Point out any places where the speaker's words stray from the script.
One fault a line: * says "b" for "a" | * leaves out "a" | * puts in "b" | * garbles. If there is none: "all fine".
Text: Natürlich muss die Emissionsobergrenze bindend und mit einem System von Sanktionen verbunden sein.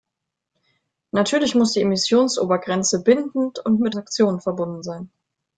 * leaves out "einem System von"